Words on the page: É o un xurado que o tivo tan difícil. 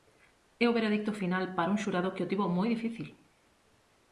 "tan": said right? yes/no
no